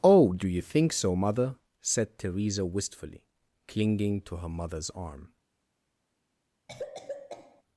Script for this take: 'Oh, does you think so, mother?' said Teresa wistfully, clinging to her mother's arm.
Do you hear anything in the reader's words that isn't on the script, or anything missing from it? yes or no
yes